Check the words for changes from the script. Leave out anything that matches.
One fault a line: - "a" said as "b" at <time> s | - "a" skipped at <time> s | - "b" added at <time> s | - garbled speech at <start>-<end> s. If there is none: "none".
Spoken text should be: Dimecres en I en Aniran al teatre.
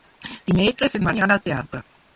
none